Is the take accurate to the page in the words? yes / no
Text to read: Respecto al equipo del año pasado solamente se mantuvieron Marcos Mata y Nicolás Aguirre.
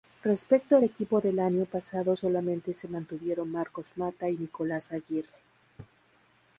yes